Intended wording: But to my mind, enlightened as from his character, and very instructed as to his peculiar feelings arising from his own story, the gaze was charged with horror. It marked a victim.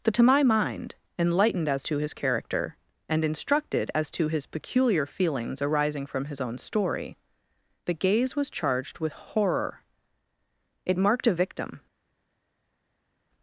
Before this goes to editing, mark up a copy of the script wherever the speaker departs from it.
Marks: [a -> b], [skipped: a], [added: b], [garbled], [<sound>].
But to my mind, enlightened as [from -> to] his character, and [skipped: very] instructed as to his peculiar feelings arising from his own story, the gaze was charged with horror. It marked a victim.